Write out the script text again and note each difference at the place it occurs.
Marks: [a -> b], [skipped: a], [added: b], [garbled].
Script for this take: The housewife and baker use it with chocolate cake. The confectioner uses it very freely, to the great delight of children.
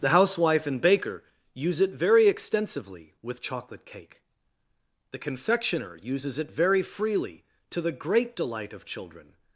The housewife and baker use it [added: very extensively] with chocolate cake. The confectioner uses it very freely, to the great delight of children.